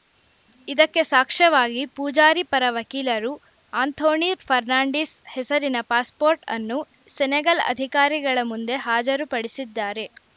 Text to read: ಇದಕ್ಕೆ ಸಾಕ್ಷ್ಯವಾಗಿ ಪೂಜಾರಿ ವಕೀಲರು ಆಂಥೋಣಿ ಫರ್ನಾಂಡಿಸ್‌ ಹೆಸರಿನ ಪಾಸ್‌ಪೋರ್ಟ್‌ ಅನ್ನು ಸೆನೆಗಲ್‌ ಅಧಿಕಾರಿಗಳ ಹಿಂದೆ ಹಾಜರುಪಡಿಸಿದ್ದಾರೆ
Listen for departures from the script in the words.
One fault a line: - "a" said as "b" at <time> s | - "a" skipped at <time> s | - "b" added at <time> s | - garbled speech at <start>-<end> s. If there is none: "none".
- "ಪರ" added at 2.5 s
- "ಹಿಂದೆ" said as "ಮುಂದೆ" at 8.4 s